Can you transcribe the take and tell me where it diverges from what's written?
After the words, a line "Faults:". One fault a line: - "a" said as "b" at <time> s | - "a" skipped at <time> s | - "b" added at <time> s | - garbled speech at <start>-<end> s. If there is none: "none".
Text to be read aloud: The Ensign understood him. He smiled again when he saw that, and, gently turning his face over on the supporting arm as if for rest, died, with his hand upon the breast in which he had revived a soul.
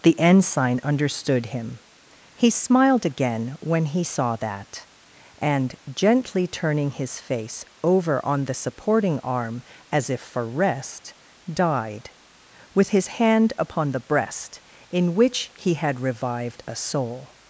The Ensign understood him. He smiled again when he saw that, and, gently turning his face over on the supporting arm as if for rest, died, with his hand upon the breast in which he had revived a soul.
Faults:
none